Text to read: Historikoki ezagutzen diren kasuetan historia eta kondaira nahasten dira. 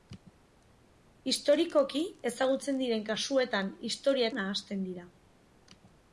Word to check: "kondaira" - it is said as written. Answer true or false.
false